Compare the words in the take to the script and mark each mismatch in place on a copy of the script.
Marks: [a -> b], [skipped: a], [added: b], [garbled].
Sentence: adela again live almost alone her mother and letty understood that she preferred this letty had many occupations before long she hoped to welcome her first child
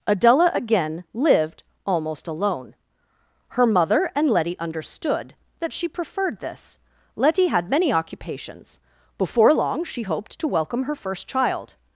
adela again [live -> lived] almost alone her mother and letty understood that she preferred this letty had many occupations before long she hoped to welcome her first child